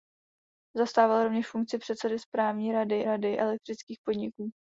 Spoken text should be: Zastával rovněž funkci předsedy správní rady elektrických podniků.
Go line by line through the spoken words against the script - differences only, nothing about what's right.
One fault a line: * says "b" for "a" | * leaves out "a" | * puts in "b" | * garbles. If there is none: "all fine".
* puts in "rady"